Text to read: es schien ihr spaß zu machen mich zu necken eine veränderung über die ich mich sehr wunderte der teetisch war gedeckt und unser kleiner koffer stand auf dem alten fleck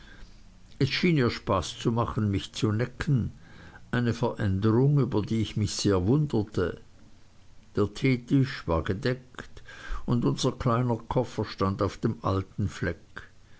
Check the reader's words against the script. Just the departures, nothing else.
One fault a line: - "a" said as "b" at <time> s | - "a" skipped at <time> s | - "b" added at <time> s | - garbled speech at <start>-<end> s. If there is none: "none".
none